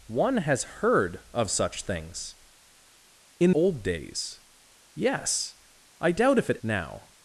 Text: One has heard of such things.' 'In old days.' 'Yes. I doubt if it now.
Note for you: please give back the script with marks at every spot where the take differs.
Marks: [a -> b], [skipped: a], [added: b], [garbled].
One has heard of such things.' 'In old days.' 'Yes. I doubt if it now.